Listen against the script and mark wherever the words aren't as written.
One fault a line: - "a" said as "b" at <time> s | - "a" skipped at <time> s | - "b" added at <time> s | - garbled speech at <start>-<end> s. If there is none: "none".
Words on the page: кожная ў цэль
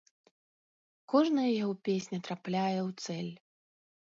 - "яго песня трапляе" added at 1.6 s